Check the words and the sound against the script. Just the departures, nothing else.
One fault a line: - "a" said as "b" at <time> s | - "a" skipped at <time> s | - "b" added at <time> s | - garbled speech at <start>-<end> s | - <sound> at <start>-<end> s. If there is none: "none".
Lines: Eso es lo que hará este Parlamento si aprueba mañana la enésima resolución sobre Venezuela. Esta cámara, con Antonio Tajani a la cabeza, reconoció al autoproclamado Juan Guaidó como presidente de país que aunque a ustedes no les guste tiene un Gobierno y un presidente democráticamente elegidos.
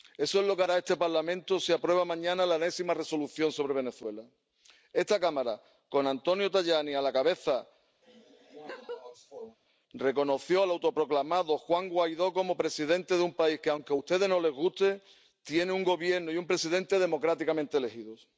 - laugh at 8.0-9.6 s
- "un" added at 13.2 s